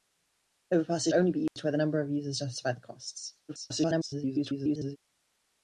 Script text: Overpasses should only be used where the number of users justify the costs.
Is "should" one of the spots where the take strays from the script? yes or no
yes